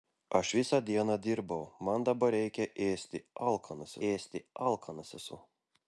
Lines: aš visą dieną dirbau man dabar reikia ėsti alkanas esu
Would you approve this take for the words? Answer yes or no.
no